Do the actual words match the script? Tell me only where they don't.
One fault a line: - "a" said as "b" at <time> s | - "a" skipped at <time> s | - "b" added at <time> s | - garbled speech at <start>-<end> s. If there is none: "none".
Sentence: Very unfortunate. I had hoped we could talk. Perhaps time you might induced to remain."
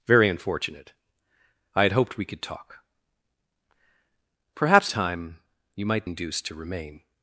none